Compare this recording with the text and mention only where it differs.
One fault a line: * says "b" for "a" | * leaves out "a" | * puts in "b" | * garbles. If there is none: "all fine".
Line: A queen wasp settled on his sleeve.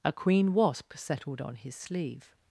all fine